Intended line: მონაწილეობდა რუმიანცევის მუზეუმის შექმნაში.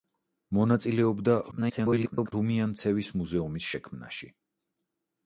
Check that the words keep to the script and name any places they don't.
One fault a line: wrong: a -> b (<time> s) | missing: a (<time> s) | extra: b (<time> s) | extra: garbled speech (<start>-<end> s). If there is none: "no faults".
extra: garbled speech (1.5-2.3 s)